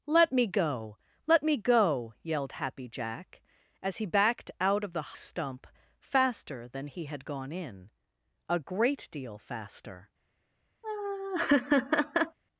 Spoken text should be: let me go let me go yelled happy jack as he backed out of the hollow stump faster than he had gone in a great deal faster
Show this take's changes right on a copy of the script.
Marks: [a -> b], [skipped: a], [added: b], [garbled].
let me go let me go yelled happy jack as he backed out of the [skipped: hollow] stump faster than he had gone in a great deal faster